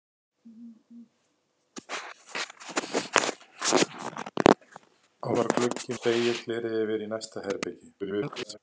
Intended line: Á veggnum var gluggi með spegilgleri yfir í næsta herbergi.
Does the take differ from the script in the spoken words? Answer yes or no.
yes